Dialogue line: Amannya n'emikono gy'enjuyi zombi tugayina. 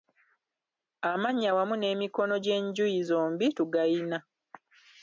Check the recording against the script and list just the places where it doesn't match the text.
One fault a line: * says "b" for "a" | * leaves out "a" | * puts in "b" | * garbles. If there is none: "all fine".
* puts in "wamu"